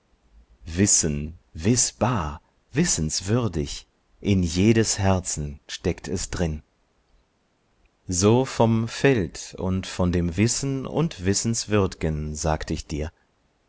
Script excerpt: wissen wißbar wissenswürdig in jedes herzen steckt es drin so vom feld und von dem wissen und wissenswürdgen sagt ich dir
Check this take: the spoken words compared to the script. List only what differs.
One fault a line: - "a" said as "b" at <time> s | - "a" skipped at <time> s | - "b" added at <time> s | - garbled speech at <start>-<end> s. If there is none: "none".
none